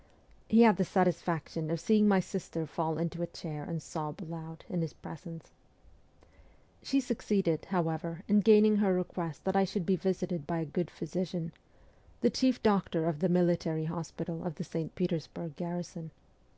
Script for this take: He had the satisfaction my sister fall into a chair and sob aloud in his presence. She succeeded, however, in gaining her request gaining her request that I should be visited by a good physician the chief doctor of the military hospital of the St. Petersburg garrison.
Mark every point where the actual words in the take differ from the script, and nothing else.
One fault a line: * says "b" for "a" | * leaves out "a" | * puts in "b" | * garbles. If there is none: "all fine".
* puts in "of seeing"
* leaves out "gaining her request"